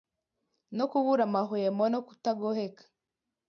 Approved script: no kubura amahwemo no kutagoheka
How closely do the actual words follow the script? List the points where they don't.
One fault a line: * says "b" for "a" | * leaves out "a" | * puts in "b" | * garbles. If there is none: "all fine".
all fine